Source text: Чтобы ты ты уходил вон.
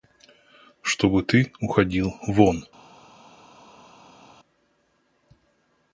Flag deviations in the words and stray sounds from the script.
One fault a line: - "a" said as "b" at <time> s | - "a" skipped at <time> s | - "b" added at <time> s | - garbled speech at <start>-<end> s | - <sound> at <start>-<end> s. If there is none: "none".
- "ты" skipped at 1.5 s